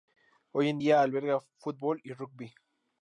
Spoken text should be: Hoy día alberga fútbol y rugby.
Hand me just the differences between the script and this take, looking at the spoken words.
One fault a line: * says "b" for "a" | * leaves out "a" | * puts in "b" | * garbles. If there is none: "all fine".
* puts in "en"